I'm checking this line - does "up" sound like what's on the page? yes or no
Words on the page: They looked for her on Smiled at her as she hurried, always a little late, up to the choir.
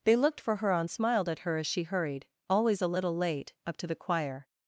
yes